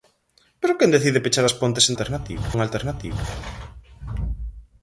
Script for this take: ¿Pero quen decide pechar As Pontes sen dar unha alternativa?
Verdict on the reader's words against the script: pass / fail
fail